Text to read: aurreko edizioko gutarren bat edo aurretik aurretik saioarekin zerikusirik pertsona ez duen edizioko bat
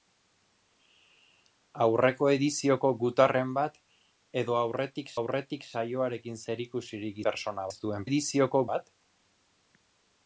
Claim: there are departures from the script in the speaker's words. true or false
false